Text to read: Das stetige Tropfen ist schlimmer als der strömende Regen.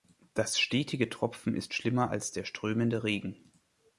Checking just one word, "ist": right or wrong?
right